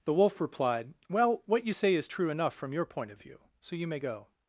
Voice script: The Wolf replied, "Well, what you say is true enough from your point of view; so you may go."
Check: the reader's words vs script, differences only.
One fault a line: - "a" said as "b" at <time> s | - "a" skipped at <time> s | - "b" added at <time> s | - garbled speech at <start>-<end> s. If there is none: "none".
none